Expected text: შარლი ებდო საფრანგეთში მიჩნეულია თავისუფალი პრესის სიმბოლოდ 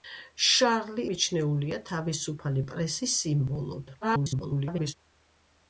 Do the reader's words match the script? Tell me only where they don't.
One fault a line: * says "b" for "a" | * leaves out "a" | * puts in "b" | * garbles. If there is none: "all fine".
* leaves out "ებდო საფრანგეთში"
* garbles